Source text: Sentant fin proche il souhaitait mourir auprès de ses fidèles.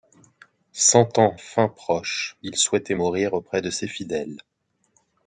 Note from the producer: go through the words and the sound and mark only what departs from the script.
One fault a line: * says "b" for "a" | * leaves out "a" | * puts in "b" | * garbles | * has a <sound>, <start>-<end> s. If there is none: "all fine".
all fine